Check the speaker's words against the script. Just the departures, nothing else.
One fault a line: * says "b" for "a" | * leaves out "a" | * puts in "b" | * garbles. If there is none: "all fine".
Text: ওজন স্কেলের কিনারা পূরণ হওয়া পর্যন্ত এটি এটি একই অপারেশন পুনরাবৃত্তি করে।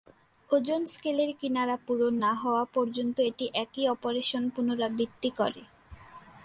* puts in "না"
* leaves out "এটি"